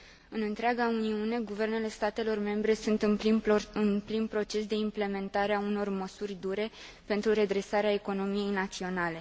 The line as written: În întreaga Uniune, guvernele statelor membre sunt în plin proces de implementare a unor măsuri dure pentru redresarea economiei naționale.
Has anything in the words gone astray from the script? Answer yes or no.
no